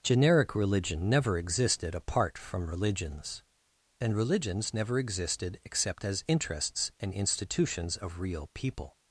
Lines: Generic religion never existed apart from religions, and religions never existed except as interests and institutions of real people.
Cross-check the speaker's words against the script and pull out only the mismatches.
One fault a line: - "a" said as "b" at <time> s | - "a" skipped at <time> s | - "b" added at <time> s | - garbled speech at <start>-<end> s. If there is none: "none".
none